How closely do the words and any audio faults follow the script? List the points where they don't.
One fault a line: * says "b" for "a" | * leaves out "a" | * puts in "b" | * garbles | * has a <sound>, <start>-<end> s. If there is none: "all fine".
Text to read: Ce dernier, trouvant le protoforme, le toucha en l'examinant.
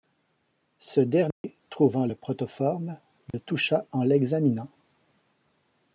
* has a dropout, 1.3-1.4 s
* has a dropout, 3.3-3.3 s